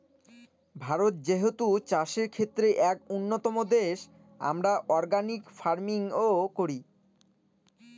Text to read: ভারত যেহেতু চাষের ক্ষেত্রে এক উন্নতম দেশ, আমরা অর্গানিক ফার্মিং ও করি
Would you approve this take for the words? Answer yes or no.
yes